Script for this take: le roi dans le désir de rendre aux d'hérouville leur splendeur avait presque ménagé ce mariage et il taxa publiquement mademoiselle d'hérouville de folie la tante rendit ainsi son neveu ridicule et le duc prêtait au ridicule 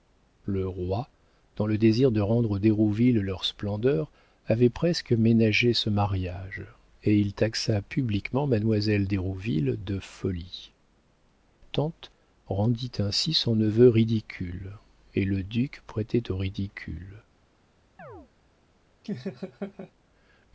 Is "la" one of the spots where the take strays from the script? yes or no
yes